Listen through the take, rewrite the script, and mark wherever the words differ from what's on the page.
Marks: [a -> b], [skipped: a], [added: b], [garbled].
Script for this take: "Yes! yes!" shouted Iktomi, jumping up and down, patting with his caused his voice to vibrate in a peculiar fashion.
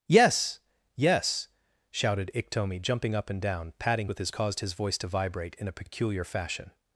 "Yes! yes!" shouted Iktomi, jumping up and down, patting with his caused his voice to vibrate in a peculiar fashion.